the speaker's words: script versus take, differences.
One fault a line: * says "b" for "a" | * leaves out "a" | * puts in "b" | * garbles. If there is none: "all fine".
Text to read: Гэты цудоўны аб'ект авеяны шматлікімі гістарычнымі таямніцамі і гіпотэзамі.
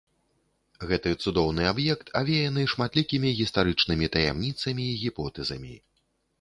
all fine